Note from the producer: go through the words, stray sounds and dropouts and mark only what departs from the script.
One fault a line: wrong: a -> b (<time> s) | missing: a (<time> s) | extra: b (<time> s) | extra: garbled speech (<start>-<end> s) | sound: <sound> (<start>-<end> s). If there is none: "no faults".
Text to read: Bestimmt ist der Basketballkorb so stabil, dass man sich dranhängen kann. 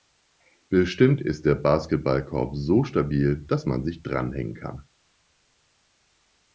no faults